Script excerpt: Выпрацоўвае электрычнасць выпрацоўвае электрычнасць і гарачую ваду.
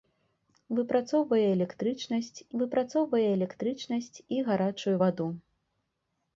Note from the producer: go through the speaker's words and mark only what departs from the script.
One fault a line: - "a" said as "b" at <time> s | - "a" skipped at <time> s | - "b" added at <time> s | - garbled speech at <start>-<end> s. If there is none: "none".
none